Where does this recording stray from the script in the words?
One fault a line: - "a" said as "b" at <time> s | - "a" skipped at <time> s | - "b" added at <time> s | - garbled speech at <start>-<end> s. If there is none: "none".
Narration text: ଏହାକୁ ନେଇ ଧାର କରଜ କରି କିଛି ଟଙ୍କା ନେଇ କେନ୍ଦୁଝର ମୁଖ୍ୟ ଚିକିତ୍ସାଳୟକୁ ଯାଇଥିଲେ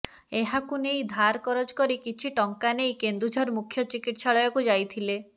none